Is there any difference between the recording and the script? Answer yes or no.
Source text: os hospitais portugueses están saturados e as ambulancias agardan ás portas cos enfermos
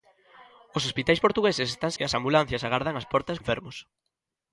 yes